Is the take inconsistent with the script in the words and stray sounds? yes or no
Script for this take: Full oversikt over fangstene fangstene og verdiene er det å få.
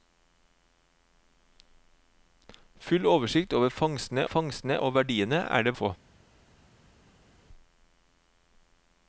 no